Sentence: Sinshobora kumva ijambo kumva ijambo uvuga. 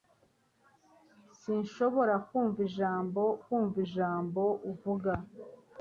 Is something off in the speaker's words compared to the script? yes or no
no